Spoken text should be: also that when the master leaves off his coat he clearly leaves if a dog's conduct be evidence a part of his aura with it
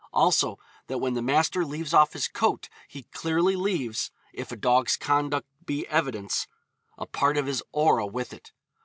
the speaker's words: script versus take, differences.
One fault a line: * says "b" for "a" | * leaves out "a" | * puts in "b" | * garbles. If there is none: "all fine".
all fine